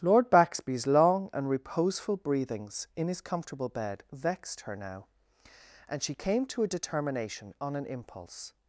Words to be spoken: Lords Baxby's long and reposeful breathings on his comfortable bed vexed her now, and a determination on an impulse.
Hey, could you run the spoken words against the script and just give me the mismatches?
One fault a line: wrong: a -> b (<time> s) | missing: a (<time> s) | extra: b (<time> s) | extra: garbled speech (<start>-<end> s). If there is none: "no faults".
wrong: Lords -> Lord (0.0 s)
wrong: on -> in (3.0 s)
extra: she came to (6.0 s)